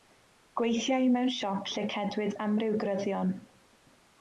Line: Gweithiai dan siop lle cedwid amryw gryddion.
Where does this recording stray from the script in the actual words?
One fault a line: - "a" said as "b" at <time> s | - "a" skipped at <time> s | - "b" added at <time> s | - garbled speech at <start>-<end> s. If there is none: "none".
- "dan" said as "mewn" at 1.2 s